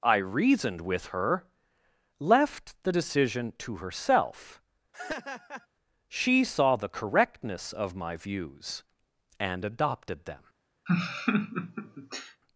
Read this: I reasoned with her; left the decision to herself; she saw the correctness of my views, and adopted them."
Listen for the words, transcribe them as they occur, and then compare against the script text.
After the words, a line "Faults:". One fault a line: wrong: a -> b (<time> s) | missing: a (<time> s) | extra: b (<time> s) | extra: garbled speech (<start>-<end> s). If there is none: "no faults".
I reasoned with her; left the decision to herself; she saw the correctness of my views, and adopted them."
Faults:
no faults